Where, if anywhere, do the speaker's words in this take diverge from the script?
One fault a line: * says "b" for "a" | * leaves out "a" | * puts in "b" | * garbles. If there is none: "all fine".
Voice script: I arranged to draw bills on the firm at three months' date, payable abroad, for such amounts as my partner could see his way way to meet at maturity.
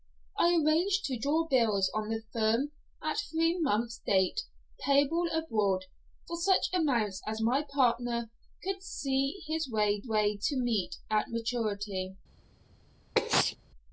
all fine